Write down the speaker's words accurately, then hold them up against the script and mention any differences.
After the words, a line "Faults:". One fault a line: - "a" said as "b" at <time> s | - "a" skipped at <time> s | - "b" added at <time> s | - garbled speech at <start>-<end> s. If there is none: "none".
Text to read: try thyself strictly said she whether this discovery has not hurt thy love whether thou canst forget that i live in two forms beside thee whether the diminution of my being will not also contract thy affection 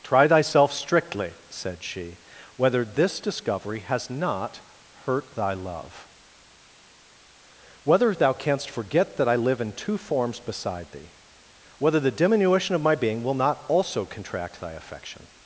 try thyself strictly said she whether this discovery has not hurt thy love whether thou canst forget that i live in two forms beside thee whether the diminution of my being will not also contract thy affection
Faults:
none